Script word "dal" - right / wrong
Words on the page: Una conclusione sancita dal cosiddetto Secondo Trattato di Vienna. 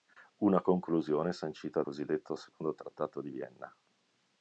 wrong